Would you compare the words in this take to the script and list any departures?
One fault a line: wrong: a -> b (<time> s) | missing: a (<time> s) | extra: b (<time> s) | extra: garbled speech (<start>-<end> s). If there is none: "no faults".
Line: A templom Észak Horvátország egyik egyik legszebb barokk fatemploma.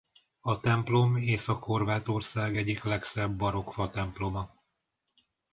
missing: egyik (2.8 s)